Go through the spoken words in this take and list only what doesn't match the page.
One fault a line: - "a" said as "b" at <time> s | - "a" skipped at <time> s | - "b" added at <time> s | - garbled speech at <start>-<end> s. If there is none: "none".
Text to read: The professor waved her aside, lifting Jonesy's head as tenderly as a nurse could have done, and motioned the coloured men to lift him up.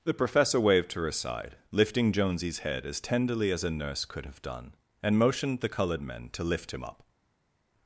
none